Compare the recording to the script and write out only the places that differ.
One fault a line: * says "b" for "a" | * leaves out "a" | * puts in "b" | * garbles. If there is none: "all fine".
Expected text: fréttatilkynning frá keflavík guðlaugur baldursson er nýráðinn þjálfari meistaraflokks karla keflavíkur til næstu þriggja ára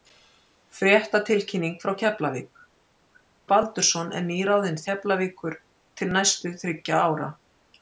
* leaves out "guðlaugur"
* leaves out "þjálfari meistaraflokks karla"